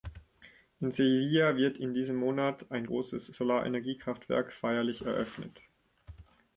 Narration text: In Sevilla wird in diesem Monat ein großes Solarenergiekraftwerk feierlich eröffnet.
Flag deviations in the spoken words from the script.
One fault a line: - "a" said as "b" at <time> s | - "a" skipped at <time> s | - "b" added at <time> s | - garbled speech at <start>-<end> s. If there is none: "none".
none